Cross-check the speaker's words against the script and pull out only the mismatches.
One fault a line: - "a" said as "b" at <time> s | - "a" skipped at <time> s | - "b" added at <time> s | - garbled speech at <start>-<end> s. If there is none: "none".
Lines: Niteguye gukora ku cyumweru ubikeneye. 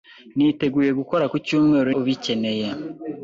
none